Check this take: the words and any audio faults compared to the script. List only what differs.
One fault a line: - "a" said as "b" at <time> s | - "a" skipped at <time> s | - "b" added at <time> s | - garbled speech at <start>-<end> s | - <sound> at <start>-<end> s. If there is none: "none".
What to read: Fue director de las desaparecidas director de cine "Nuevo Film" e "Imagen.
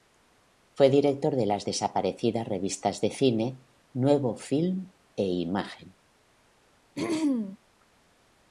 - "director" said as "revistas" at 2.5 s
- throat clearing at 7.0-7.6 s